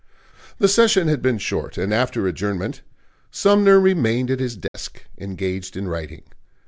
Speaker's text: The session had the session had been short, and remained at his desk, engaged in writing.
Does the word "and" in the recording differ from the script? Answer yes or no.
yes